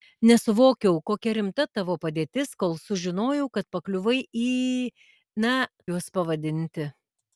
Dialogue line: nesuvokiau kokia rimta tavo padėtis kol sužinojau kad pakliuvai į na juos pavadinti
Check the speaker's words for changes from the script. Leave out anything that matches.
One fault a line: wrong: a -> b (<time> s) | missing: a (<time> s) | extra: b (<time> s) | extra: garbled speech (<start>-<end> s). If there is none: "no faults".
no faults